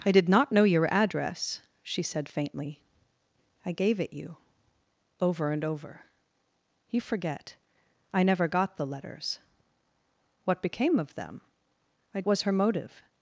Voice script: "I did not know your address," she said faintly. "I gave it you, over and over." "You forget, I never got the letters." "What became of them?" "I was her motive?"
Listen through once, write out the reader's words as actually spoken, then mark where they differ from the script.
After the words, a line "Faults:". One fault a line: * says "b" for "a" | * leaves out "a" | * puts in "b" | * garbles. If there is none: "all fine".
"I did not know your address," she said faintly. "I gave it you, over and over." "You forget, I never got the letters." "What became of them?" "I was her motive?"
Faults:
all fine